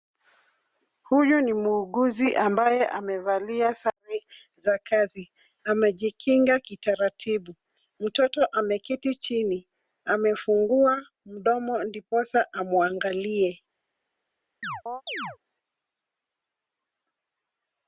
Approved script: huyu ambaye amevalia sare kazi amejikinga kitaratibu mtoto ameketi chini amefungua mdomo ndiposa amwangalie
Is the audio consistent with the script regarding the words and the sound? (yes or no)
no